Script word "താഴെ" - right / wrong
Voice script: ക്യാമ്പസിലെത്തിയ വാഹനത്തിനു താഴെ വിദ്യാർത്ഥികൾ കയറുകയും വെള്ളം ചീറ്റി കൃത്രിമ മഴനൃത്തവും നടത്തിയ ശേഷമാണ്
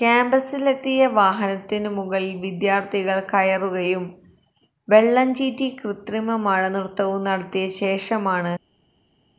wrong